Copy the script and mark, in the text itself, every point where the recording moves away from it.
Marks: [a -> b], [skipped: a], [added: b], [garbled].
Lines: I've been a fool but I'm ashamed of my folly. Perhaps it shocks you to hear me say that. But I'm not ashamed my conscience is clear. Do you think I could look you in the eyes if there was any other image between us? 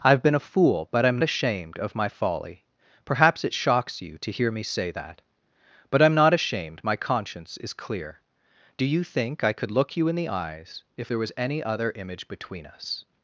I've been a fool but I'm ashamed of my folly. Perhaps it shocks you to hear me say that. But I'm not ashamed my conscience is clear. Do you think I could look you in the eyes if there was any other image between us?